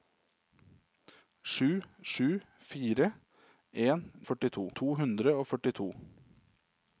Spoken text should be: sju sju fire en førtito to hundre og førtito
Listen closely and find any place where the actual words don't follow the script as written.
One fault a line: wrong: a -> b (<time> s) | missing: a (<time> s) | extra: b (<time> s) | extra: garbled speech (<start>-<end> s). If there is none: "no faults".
no faults